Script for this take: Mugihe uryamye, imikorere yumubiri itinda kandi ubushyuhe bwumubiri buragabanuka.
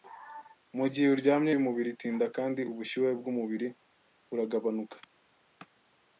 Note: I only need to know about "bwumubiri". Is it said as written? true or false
true